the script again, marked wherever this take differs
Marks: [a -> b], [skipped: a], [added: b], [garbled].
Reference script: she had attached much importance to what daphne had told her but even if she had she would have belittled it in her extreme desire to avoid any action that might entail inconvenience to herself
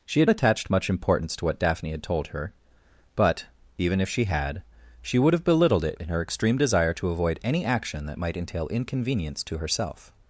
she had attached much importance to what daphne had told her but even if she had she would have belittled it in her extreme desire to avoid any action that might entail inconvenience to herself